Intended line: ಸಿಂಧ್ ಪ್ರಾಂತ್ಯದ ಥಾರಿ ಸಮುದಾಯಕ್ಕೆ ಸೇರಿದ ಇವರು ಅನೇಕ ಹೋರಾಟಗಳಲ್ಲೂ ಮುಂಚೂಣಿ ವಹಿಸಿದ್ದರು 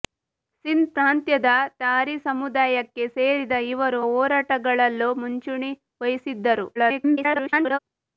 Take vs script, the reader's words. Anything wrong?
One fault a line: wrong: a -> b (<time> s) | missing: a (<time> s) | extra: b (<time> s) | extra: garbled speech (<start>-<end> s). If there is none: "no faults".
missing: ಅನೇಕ (4.0 s)
extra: garbled speech (6.8-7.8 s)